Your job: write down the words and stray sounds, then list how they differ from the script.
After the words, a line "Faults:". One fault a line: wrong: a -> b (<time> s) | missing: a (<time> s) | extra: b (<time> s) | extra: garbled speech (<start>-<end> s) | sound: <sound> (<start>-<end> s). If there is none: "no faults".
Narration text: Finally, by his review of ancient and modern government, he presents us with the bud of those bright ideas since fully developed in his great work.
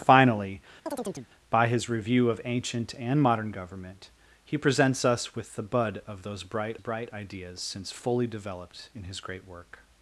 Finally, by his review of ancient and modern government, he presents us with the bud of those bright bright ideas since fully developed in his great work.
Faults:
sound: chirp (0.9-1.3 s)
extra: bright (6.8 s)